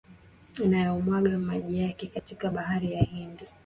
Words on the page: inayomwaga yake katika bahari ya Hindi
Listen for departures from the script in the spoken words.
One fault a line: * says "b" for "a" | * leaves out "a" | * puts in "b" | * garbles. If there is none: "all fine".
* puts in "maji"